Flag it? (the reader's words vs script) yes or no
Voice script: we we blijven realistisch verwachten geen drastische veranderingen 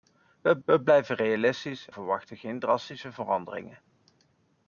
no